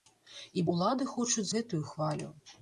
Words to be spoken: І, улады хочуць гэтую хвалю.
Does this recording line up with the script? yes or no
yes